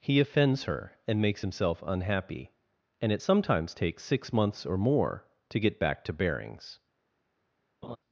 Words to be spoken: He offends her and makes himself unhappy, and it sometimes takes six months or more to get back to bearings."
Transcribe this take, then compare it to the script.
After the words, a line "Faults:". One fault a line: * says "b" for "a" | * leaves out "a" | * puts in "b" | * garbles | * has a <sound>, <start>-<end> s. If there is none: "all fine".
He offends her and makes himself unhappy, and it sometimes takes six months or more to get back to bearings."
Faults:
* has a laugh, 7.8-8.0 s